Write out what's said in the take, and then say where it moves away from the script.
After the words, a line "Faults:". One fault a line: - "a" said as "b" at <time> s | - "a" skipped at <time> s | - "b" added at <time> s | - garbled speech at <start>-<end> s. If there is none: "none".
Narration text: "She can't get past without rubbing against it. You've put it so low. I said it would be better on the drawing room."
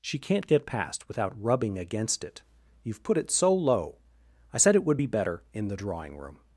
"She can't get past without rubbing against it. You've put it so low. I said it would be better in the drawing room."
Faults:
- "on" said as "in" at 5.5 s